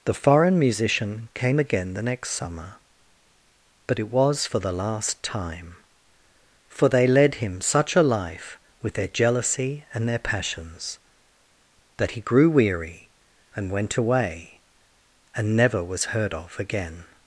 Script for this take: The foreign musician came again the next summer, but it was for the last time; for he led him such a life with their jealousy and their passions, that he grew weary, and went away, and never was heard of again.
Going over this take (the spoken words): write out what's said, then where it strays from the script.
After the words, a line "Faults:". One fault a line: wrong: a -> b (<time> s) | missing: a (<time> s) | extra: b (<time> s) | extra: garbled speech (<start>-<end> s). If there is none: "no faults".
The foreign musician came again the next summer, but it was for the last time; for they led him such a life with their jealousy and their passions, that he grew weary, and went away, and never was heard of again.
Faults:
wrong: he -> they (6.9 s)